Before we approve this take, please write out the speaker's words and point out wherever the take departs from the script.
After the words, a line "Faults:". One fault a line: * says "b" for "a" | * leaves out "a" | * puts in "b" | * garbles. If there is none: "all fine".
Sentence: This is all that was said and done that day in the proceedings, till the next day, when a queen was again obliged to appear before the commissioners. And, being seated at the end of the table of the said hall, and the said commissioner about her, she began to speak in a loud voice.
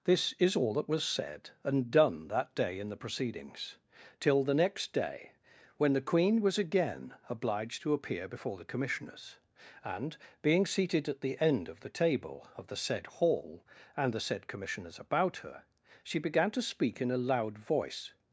This is all that was said and done that day in the proceedings, till the next day, when the queen was again obliged to appear before the commissioners. And, being seated at the end of the table of the said hall, and the said commissioners about her, she began to speak in a loud voice.
Faults:
* says "the" for "a"
* says "commissioners" for "commissioner"